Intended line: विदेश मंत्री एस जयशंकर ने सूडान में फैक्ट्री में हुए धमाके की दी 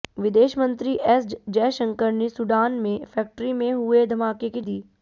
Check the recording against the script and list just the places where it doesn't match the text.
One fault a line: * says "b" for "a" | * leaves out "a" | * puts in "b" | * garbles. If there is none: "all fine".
all fine